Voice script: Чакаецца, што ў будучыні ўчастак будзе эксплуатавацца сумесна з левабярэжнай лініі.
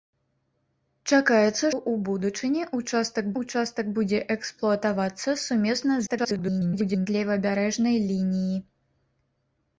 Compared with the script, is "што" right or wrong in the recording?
wrong